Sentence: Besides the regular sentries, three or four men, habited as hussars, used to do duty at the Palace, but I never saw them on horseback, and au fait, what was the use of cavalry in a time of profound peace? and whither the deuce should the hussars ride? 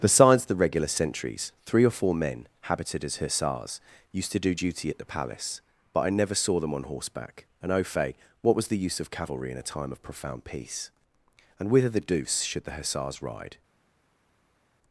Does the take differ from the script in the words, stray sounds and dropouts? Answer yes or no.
no